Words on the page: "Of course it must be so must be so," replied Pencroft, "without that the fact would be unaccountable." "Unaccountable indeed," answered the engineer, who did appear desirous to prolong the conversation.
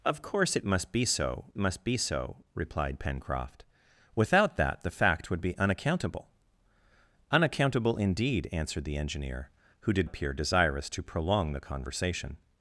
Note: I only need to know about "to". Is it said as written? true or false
true